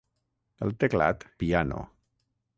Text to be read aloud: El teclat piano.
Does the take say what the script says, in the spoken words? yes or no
yes